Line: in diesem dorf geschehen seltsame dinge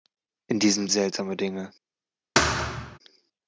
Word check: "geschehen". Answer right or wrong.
wrong